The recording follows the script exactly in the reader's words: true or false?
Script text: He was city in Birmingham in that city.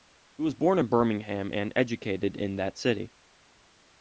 false